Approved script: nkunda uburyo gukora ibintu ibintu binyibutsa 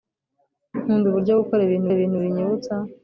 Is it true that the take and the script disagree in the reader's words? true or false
false